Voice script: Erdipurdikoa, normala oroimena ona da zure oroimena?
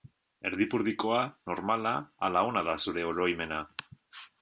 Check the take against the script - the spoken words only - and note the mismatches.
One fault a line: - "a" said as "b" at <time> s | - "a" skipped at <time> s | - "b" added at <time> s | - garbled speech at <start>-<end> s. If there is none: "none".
- "oroimena" said as "ala" at 2.3 s